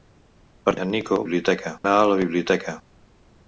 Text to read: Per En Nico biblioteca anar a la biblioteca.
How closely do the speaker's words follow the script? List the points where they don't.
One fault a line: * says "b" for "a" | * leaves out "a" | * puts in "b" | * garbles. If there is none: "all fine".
all fine